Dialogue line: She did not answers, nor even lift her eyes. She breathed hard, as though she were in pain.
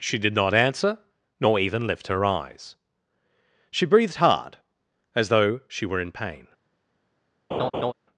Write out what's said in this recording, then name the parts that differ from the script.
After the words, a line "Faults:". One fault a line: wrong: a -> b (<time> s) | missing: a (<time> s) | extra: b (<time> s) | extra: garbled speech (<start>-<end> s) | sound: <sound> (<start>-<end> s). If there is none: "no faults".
She did not answer, nor even lift her eyes. She breathed hard, as though she were in pain.
Faults:
wrong: answers -> answer (0.6 s)
sound: laugh (7.5-7.9 s)